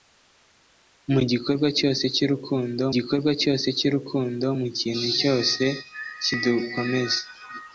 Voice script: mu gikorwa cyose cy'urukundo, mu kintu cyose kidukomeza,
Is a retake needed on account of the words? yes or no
yes